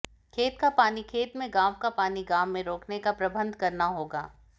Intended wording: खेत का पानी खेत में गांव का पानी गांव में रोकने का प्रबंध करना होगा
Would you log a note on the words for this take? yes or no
no